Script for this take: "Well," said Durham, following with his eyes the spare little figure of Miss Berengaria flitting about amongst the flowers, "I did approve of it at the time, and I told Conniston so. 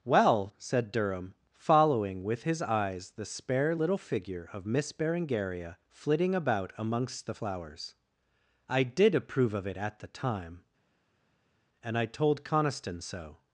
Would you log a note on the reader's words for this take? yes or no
no